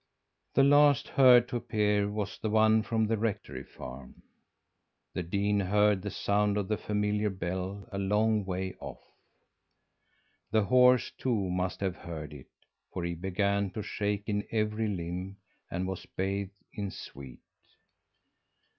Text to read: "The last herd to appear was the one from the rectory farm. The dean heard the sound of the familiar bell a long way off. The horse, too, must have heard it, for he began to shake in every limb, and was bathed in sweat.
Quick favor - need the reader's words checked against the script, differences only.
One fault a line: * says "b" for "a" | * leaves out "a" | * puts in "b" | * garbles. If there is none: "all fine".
all fine